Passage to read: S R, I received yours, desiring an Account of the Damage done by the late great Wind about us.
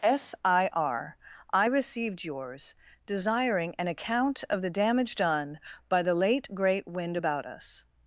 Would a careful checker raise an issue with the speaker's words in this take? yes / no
yes